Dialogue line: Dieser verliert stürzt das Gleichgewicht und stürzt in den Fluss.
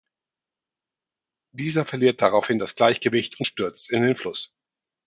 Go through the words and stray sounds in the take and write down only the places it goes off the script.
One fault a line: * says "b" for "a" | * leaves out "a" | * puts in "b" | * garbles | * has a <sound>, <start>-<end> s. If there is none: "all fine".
* says "daraufhin" for "stürzt"